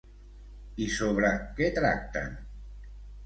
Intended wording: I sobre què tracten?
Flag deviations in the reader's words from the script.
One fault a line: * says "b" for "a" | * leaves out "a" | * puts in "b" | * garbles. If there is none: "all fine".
all fine